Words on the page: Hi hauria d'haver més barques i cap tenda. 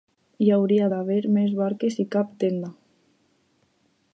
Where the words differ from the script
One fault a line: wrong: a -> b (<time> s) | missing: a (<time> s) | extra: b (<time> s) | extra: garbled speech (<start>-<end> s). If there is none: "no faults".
no faults